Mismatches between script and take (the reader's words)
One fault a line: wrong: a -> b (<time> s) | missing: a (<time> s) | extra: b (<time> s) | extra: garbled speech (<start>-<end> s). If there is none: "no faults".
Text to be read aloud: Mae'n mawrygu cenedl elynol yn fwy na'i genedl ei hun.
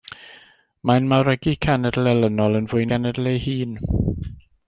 missing: na'i (2.9 s)